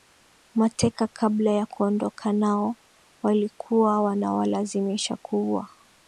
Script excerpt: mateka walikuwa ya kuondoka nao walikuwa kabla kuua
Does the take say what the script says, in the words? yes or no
no